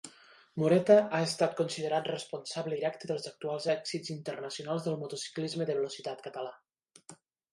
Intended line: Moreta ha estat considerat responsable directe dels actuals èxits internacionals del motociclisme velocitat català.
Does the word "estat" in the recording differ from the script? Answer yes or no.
no